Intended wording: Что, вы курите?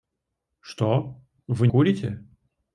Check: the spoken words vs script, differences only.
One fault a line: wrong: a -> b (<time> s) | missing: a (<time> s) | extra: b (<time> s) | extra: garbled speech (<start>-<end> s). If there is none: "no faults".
no faults